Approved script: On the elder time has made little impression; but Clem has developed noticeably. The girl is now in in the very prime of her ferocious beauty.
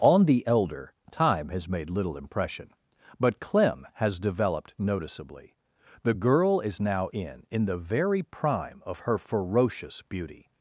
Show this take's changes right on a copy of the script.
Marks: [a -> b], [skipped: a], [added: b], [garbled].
On the elder time has made little impression; but Clem has developed noticeably. The girl is now in in the very prime of her ferocious beauty.